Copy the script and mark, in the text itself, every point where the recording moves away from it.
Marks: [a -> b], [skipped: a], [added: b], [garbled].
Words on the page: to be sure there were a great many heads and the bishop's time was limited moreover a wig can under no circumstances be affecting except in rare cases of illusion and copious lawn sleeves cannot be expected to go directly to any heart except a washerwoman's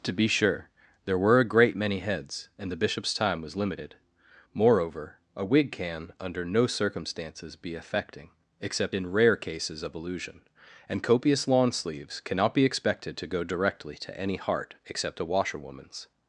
to be sure there were a great many heads and the bishop's time was limited moreover a wig can under no circumstances be affecting except in rare cases of illusion and copious lawn sleeves cannot be expected to go directly to any heart except a washerwoman's